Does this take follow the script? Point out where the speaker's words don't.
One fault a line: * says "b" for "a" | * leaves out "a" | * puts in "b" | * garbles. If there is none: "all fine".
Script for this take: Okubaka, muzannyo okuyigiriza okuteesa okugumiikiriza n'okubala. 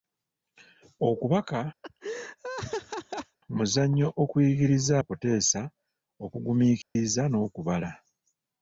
all fine